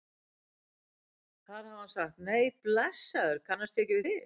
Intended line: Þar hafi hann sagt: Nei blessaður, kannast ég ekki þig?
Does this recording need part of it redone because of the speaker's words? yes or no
no